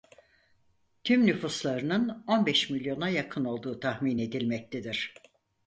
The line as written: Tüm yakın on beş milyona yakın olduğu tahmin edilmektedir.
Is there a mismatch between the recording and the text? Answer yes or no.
yes